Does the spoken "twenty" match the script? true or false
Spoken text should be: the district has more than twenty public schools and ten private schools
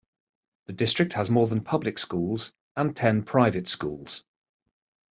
false